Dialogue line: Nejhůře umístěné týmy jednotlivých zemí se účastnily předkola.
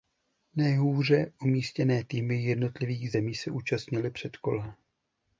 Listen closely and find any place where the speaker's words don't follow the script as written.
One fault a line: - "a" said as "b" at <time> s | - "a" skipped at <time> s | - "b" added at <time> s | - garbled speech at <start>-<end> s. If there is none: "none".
none